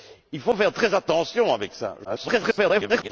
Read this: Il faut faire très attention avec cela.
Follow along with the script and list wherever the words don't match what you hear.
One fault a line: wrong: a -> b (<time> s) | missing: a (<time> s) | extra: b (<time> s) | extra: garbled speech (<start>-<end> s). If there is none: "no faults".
extra: garbled speech (2.0-3.1 s)